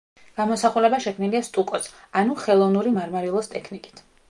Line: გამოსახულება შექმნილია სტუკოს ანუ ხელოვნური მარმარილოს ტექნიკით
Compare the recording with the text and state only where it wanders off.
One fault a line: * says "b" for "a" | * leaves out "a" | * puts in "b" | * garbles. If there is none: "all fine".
all fine